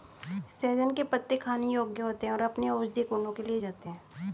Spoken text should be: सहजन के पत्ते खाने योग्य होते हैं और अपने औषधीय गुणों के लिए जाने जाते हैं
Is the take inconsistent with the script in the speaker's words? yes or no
yes